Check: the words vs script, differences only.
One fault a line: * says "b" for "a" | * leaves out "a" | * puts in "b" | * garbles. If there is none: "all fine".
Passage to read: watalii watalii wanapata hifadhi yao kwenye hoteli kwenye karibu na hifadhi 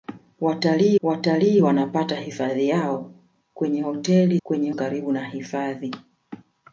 all fine